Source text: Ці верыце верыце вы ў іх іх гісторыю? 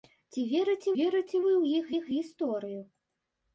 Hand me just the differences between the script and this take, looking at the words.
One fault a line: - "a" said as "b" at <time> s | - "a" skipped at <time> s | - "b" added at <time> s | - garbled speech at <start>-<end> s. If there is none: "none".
none